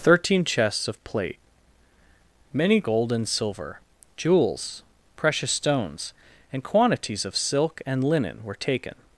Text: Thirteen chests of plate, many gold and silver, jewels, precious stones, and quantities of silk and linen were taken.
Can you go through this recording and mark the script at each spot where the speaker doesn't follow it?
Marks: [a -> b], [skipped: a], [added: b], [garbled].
Thirteen chests of plate, many gold and silver, jewels, precious stones, and quantities of silk and linen were taken.